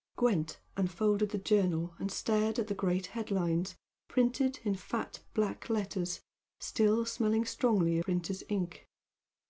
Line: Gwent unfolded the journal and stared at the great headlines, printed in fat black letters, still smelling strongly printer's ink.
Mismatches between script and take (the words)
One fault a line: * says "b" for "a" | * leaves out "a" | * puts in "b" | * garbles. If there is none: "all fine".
all fine